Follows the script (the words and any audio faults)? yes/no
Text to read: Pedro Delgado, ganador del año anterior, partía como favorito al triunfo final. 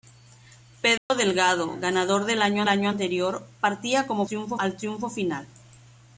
no